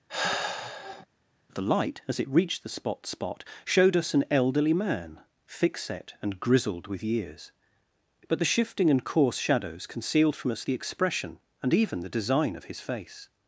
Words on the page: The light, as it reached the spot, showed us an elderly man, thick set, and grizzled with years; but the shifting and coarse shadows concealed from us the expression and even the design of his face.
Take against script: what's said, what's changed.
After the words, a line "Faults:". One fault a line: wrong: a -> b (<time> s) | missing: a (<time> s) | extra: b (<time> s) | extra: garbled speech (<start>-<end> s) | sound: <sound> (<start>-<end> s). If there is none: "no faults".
The light, as it reached the spot spot, showed us an elderly man, thick set, and grizzled with years; but the shifting and coarse shadows concealed from us the expression and even the design of his face.
Faults:
sound: sigh (0.1-1.1 s)
extra: spot (3.1 s)